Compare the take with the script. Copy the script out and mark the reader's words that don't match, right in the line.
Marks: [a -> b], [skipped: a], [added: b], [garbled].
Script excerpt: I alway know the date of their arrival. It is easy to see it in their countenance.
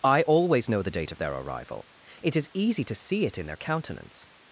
I [alway -> always] know the date of their arrival. It is easy to see it in their countenance.